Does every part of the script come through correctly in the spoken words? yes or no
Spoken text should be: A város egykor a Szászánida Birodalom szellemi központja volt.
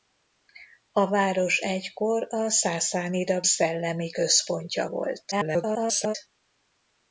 no